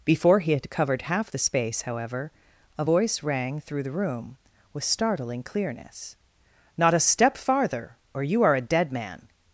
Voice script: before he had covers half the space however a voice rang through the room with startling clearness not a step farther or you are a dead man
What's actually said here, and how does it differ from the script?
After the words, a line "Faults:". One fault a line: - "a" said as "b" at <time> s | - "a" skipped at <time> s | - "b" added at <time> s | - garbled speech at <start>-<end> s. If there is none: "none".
before he had covered half the space however a voice rang through the room with startling clearness not a step farther or you are a dead man
Faults:
- "covers" said as "covered" at 0.7 s